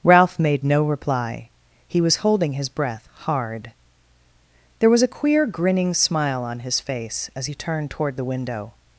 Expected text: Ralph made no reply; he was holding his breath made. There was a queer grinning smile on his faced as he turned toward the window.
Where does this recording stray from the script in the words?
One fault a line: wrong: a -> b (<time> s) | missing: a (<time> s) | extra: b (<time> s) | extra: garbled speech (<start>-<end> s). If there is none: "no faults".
wrong: made -> hard (3.1 s)
wrong: faced -> face (6.8 s)